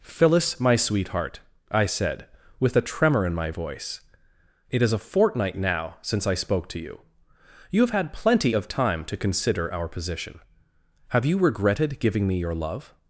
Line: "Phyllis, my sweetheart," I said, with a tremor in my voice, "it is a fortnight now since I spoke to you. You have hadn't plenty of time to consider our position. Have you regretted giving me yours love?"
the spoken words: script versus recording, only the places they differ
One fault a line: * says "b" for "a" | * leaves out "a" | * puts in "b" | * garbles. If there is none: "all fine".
* says "had" for "hadn't"
* says "your" for "yours"